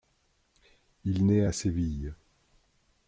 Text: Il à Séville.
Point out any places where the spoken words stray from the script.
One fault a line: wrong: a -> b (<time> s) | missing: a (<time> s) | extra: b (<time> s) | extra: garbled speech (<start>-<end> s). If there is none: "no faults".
extra: naît (1.3 s)